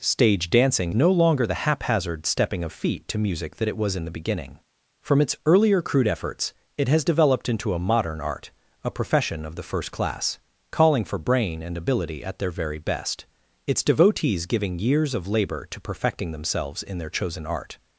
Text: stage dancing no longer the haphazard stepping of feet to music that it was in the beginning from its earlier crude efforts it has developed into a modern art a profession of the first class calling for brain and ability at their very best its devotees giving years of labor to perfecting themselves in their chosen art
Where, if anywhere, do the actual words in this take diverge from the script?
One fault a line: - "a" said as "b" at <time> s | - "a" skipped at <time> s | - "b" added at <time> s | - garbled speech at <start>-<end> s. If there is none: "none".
none